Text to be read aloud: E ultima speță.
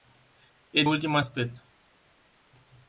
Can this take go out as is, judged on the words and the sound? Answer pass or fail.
pass